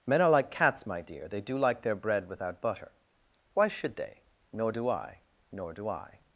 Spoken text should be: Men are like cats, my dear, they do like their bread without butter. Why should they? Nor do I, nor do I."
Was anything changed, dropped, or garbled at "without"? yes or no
no